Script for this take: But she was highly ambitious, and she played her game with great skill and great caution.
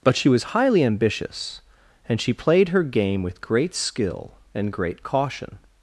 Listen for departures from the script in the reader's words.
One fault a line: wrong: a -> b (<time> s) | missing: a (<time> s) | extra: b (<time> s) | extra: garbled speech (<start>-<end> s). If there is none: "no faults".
no faults